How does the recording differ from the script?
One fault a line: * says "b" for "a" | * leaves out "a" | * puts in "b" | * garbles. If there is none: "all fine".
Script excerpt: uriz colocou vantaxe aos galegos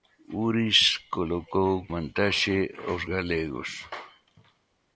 all fine